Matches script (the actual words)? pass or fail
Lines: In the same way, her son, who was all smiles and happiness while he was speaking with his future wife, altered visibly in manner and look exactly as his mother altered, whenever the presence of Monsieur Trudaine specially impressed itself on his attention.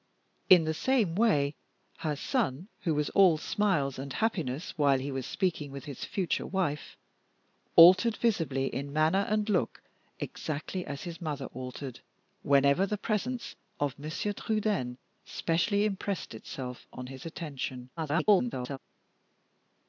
fail